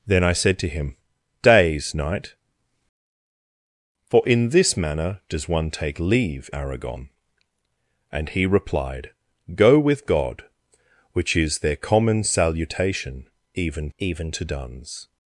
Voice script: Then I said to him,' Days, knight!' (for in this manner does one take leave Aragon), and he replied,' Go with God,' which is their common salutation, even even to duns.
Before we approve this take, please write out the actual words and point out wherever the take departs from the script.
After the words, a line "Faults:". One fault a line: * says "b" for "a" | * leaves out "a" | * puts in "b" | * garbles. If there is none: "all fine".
Then I said to him,' Days, knight!' (for in this manner does one take leave Aragon), and he replied,' Go with God,' which is their common salutation, even even to duns.
Faults:
all fine